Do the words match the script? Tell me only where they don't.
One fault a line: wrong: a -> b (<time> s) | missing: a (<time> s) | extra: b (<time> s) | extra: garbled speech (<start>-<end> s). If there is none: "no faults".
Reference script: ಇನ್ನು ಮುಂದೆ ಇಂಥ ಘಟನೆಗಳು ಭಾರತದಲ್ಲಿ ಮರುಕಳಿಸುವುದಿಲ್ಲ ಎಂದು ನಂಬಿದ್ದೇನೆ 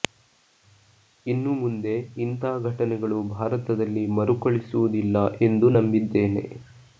no faults